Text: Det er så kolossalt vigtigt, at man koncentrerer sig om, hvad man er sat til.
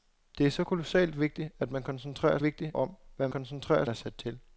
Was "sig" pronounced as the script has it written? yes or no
no